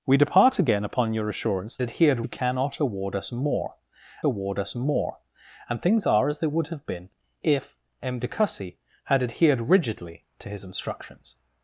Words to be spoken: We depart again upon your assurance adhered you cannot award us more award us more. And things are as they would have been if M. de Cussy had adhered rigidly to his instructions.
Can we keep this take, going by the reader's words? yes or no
yes